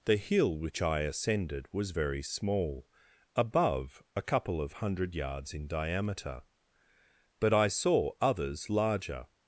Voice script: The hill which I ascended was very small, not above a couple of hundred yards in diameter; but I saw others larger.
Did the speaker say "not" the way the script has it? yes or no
no